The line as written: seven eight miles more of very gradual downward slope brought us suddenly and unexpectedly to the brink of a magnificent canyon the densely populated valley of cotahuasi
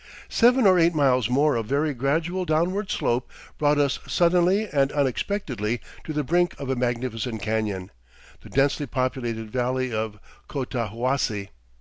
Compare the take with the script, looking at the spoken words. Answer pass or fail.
fail